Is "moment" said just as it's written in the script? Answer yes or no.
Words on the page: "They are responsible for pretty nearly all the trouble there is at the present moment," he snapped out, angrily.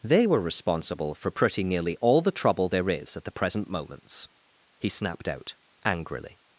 no